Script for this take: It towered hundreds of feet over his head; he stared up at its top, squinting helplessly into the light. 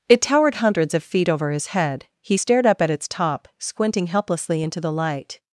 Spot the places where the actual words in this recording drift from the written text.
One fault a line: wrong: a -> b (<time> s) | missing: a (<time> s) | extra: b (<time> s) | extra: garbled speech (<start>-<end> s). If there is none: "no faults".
no faults